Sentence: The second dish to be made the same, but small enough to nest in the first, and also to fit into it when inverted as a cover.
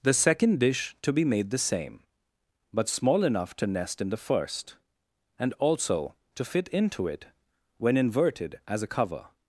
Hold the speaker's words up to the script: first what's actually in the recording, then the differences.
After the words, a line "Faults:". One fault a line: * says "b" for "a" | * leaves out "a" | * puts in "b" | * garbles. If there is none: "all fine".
The second dish to be made the same, but small enough to nest in the first, and also to fit into it when inverted as a cover.
Faults:
all fine